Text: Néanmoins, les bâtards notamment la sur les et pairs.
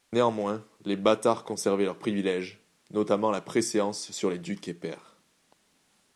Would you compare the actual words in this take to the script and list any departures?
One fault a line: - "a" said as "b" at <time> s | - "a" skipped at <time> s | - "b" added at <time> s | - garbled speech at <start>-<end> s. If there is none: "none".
- "conservaient leurs privilèges" added at 1.4 s
- "préséance" added at 3.4 s
- "ducs" added at 4.4 s